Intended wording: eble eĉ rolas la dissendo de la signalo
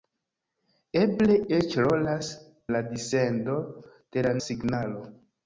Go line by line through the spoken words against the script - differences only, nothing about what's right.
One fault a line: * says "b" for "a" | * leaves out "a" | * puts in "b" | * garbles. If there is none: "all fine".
all fine